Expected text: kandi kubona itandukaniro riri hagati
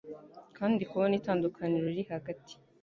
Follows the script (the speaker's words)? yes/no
yes